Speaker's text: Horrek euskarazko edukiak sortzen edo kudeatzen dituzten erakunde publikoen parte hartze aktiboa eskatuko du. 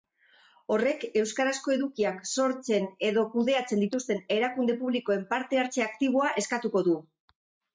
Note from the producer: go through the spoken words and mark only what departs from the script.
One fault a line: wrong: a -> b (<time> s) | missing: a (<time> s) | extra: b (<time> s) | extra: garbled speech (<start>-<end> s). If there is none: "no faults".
no faults